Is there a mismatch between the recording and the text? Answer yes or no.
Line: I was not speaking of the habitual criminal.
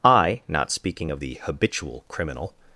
yes